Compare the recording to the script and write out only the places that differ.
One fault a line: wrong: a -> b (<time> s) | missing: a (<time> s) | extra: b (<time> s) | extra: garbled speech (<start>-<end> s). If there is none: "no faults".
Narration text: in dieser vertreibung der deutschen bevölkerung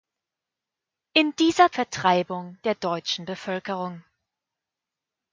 no faults